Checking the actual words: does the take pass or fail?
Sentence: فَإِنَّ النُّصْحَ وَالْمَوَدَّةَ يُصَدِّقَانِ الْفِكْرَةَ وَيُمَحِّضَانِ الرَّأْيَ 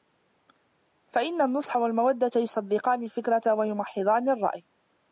pass